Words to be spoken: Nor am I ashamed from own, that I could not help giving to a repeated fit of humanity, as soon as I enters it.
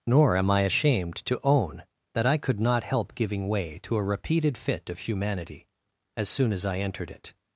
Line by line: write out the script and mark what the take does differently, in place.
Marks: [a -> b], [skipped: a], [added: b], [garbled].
Nor am I ashamed [from -> to] own, that I could not help giving [added: way] to a repeated fit of humanity, as soon as I [enters -> entered] it.